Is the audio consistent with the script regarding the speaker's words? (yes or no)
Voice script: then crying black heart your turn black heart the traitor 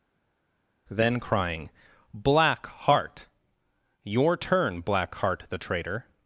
yes